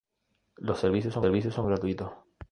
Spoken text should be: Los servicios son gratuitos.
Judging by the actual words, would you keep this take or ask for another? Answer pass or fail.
fail